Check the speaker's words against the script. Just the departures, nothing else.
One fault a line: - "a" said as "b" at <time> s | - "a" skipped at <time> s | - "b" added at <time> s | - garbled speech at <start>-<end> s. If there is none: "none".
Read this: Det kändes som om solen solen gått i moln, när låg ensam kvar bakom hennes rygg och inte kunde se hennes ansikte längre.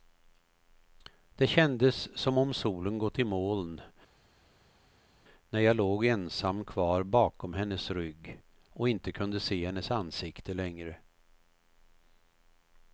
- "solen" skipped at 3.0 s
- "jag" added at 5.6 s